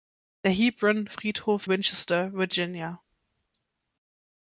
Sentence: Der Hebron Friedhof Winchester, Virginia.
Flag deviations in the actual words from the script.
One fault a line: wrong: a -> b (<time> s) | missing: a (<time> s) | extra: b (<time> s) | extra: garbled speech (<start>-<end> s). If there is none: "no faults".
no faults